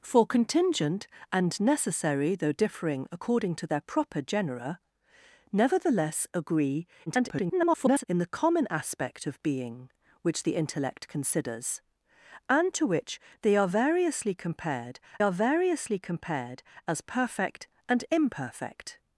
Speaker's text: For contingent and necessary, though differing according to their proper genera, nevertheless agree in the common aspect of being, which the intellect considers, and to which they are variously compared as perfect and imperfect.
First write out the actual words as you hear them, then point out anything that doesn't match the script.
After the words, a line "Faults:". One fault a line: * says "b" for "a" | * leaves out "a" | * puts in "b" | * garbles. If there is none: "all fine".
For contingent and necessary, though differing according to their proper genera, nevertheless agree [garbled] in the common aspect of being, which the intellect considers, and to which they are variously compared are variously compared as perfect and imperfect.
Faults:
* garbles
* puts in "are variously compared"